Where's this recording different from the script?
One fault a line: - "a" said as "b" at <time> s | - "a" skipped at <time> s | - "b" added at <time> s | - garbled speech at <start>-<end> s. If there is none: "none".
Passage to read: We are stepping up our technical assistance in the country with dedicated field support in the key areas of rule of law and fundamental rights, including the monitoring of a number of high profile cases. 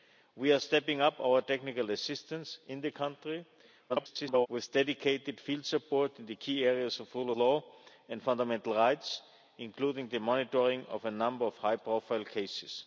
- garbled speech at 3.9-4.5 s
- "of" skipped at 7.3 s